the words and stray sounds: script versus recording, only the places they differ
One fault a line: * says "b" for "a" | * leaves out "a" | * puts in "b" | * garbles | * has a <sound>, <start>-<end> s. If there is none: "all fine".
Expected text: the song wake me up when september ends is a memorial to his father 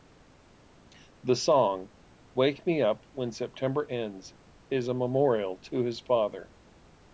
all fine